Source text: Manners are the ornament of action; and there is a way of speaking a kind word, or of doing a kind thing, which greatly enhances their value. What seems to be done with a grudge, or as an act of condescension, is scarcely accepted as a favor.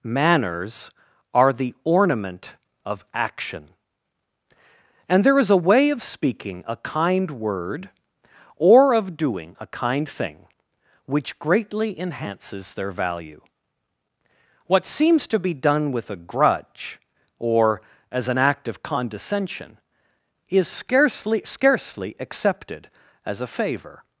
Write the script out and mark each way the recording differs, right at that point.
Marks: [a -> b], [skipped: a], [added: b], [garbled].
Manners are the ornament of action; and there is a way of speaking a kind word, or of doing a kind thing, which greatly enhances their value. What seems to be done with a grudge, or as an act of condescension, is scarcely [added: scarcely] accepted as a favor.